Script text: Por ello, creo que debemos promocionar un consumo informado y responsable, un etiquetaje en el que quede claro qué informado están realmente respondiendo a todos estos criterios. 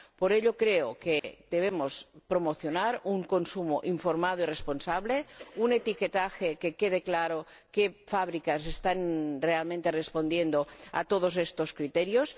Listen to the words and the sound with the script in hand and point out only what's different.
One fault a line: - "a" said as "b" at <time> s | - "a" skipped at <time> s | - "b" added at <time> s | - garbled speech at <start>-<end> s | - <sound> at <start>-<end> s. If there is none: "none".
- dropout at 1.2-1.2 s
- "informado" said as "fábricas" at 8.1 s